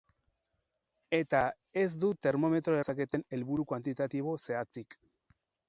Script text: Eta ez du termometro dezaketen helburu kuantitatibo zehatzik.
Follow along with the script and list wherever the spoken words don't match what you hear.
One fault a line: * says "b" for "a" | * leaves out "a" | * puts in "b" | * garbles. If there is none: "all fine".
all fine